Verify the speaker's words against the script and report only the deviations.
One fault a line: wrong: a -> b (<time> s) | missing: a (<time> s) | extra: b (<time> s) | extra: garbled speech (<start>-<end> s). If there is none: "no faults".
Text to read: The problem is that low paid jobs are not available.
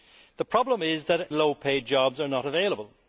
no faults